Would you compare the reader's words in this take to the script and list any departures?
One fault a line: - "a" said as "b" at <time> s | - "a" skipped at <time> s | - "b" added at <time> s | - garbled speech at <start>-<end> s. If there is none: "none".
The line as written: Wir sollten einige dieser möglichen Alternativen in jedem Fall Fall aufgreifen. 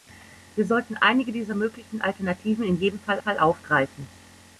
none